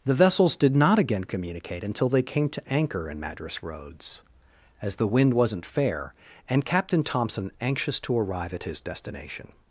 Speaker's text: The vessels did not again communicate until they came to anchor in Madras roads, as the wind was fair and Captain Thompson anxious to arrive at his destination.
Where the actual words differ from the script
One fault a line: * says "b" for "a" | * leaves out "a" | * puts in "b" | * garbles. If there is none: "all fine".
* says "wasn't" for "was"